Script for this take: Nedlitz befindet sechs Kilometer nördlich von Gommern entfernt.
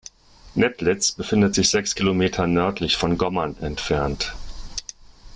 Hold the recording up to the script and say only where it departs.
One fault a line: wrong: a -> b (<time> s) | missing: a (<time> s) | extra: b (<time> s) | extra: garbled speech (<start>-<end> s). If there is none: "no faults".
extra: sich (1.5 s)